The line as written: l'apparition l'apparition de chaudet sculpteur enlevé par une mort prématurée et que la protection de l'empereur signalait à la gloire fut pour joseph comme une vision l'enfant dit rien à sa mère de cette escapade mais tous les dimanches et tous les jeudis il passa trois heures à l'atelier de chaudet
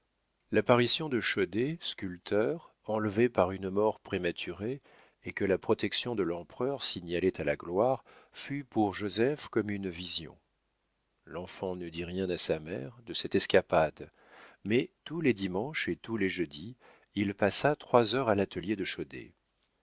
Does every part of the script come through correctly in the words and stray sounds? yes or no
no